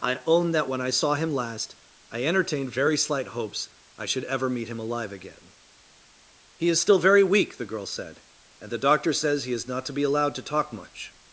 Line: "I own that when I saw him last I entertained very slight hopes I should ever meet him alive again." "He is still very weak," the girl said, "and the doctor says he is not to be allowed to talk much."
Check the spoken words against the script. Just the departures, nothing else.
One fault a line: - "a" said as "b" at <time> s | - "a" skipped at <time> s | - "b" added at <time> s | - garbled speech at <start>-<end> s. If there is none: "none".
none